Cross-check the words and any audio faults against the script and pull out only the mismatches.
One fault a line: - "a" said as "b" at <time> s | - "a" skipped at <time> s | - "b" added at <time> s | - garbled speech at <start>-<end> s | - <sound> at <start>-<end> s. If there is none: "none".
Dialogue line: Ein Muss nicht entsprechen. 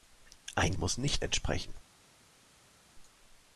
none